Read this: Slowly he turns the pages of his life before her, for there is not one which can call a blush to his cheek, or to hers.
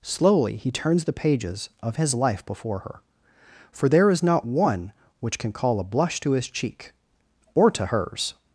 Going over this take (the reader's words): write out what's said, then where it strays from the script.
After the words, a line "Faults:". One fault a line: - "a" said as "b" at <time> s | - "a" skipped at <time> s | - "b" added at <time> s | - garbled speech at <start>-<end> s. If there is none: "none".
Slowly he turns the pages of his life before her, for there is not one which can call a blush to his cheek, or to hers.
Faults:
none